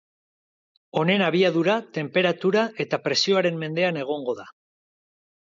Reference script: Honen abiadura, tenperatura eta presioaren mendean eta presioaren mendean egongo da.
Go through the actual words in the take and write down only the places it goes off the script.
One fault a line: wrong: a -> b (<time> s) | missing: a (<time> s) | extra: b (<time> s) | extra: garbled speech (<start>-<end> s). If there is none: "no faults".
missing: eta presioaren mendean (4.0 s)